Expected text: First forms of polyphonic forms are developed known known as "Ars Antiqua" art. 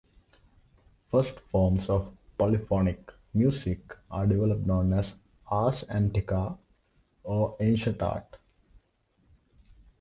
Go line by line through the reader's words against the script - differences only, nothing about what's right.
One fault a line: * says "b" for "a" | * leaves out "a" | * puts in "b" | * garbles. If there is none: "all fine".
* says "music" for "forms"
* leaves out "known"
* puts in "or Ancient"